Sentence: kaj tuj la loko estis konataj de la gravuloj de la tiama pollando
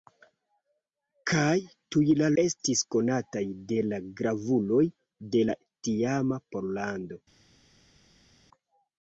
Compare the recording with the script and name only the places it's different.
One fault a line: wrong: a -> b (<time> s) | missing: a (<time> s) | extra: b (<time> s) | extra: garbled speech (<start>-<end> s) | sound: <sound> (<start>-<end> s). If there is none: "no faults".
missing: loko (2.3 s)